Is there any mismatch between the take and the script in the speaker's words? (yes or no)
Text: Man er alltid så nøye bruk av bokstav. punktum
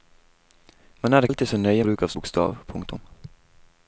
no